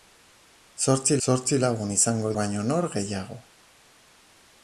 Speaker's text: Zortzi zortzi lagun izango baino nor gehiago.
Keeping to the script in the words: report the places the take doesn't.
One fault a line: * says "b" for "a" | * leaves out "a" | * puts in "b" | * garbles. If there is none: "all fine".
all fine